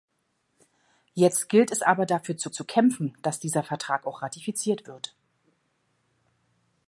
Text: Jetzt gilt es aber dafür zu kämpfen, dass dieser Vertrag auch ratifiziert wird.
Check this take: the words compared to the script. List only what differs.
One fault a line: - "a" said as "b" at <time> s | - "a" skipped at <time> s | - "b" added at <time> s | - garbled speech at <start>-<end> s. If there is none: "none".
- "zu" added at 2.5 s